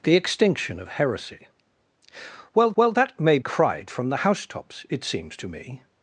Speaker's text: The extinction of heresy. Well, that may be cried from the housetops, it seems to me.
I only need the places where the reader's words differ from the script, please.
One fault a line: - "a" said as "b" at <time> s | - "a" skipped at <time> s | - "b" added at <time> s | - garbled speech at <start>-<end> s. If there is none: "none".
- "well" added at 2.8 s
- "be" skipped at 3.4 s